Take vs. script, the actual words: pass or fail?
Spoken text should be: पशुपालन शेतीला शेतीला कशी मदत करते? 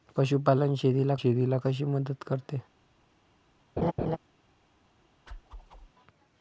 pass